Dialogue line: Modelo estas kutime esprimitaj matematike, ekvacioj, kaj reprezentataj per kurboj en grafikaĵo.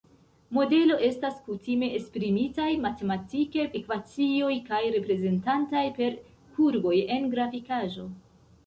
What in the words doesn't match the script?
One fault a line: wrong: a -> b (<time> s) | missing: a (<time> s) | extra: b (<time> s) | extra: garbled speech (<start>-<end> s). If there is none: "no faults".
no faults